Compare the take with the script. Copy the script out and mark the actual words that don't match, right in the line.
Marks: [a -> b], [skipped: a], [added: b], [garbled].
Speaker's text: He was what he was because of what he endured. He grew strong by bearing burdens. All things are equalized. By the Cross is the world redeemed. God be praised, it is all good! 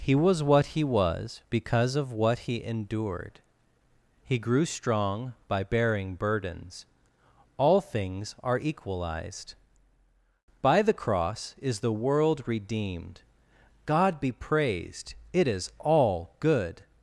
He was what he was because of what he endured. He grew strong by bearing burdens. All things are equalized. By the Cross is the world redeemed. God be praised, it is all good!